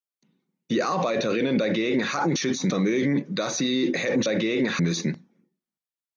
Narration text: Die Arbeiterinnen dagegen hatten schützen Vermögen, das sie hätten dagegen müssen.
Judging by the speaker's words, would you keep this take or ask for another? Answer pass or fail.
pass